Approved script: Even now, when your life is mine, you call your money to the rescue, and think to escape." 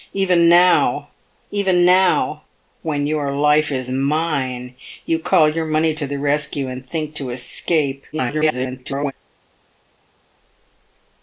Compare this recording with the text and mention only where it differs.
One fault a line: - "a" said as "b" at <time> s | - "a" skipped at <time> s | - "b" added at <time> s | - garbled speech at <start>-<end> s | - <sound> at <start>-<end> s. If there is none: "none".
- "even now" added at 1.5 s
- garbled speech at 8.1-9.1 s